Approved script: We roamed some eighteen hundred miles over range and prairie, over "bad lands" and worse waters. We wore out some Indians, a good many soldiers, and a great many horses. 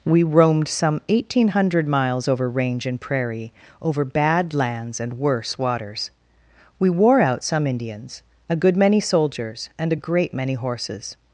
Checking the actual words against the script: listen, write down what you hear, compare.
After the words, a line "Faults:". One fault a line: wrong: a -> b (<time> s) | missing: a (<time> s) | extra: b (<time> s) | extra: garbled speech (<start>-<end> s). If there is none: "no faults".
We roamed some eighteen hundred miles over range and prairie, over "bad lands" and worse waters. We wore out some Indians, a good many soldiers, and a great many horses.
Faults:
no faults